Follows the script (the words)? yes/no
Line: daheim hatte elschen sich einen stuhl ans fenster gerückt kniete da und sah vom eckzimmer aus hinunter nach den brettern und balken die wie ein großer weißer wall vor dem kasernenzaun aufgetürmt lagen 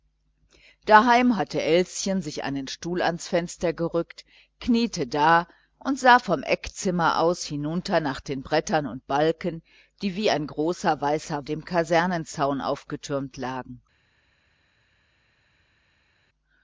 no